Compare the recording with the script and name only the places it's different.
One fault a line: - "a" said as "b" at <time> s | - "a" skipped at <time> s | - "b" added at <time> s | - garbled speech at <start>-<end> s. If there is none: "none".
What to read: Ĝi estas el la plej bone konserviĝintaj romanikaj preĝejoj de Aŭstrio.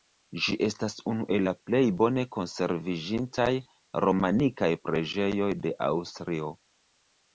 - "unu" added at 1.1 s